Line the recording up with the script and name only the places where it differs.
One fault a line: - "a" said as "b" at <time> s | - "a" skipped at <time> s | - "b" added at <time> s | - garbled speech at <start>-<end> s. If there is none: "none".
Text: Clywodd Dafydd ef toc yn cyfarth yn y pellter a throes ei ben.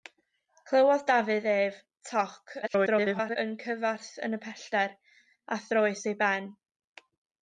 - garbled speech at 2.6-3.4 s